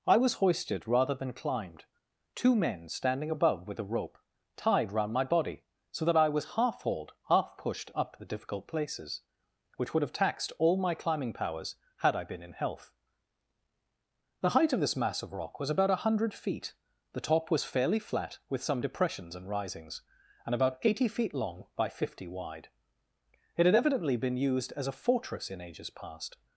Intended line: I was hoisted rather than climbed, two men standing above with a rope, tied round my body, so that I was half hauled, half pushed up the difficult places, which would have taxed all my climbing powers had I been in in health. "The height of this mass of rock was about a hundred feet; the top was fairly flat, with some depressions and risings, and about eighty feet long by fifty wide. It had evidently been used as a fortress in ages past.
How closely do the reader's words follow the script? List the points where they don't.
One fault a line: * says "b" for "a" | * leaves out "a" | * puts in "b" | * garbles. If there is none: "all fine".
* leaves out "in"